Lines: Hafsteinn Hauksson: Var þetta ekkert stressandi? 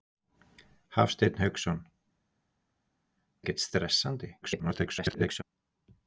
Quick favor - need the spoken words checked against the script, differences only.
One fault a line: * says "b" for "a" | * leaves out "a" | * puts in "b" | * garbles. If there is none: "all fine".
* leaves out "Var þetta"
* garbles